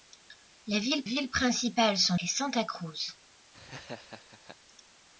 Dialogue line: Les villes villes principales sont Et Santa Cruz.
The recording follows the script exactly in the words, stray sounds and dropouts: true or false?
false